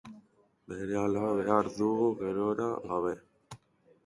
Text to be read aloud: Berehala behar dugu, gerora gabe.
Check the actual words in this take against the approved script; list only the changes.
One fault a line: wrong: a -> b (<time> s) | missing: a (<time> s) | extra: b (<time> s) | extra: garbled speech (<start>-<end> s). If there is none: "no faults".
no faults